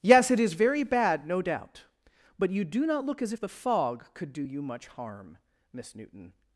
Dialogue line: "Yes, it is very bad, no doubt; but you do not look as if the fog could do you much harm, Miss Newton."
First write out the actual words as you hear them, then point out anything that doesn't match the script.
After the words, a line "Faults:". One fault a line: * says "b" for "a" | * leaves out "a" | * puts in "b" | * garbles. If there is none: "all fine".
"Yes, it is very bad, no doubt; but you do not look as if the fog could do you much harm, Miss Newton."
Faults:
all fine